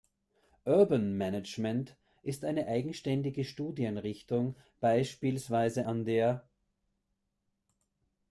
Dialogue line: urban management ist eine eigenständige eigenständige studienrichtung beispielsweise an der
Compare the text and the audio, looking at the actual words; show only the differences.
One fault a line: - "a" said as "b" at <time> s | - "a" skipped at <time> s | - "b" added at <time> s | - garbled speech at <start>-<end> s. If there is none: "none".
- "eigenständige" skipped at 3.4 s